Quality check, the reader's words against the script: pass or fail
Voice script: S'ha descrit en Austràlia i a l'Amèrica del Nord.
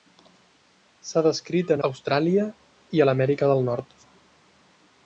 pass